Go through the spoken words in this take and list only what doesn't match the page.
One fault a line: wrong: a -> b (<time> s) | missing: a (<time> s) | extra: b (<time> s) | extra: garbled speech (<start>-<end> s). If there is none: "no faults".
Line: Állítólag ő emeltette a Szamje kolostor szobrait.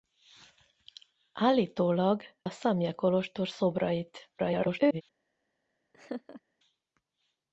missing: ő emeltette (2.2 s)
extra: garbled speech (4.4-5.0 s)